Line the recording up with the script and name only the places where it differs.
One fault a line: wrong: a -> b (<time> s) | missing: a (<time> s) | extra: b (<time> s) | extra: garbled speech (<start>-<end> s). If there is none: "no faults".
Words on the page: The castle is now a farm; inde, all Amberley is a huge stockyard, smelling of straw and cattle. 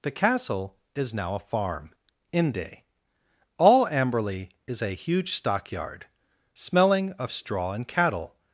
no faults